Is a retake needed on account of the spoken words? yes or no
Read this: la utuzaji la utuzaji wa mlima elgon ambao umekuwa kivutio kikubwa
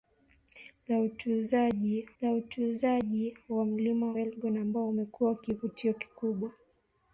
no